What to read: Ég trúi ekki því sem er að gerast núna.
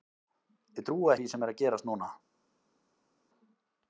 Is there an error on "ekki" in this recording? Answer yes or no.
yes